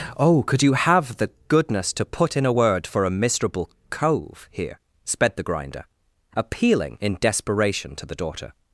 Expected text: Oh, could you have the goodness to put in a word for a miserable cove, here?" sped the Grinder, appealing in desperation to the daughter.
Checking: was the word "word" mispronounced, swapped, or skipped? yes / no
no